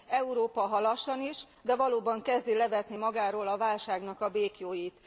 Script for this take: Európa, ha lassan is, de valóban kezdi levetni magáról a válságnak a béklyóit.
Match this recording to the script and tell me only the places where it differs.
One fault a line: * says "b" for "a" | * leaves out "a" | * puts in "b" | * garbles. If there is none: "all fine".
all fine